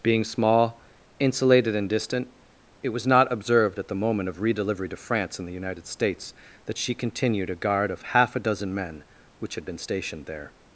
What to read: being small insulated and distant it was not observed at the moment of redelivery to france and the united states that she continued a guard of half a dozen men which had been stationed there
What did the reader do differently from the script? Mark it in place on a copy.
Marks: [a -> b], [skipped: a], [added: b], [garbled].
being small insulated and distant it was not observed at the moment of redelivery to france and the united states that she continued a guard of half a dozen men which had been stationed there